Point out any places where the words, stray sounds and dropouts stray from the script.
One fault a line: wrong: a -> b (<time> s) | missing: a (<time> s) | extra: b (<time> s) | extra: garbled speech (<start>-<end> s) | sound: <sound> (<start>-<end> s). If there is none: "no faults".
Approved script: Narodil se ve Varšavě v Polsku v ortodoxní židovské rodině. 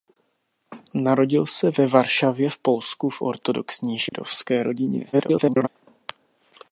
sound: dropout (4.1-4.1 s)
extra: garbled speech (5.1-5.7 s)